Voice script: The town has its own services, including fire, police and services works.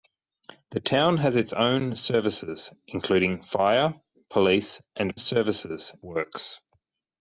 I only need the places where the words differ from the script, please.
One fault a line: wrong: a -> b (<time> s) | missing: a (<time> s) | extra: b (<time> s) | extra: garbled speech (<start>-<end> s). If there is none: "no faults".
no faults